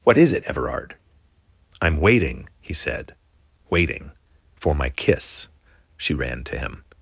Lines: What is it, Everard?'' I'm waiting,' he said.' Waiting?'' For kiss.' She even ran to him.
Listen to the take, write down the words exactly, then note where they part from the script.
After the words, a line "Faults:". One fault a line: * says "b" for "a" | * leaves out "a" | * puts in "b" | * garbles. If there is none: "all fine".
What is it, Everard?'' I'm waiting,' he said.' Waiting?'' For my kiss.' She ran to him.
Faults:
* puts in "my"
* leaves out "even"